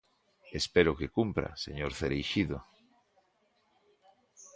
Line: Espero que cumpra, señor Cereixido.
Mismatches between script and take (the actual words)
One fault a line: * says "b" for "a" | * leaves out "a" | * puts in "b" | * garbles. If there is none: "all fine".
all fine